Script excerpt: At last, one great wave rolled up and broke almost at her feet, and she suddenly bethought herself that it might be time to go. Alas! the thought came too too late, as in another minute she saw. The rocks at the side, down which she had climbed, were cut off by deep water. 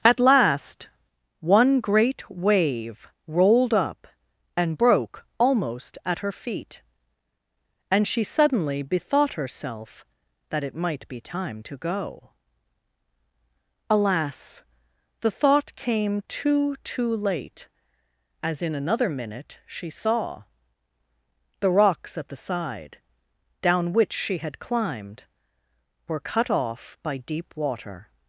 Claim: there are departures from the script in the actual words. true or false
false